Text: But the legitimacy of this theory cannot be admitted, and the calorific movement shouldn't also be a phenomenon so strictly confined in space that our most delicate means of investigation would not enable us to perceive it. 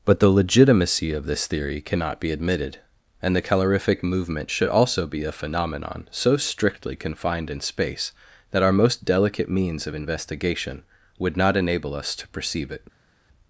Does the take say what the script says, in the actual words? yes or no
no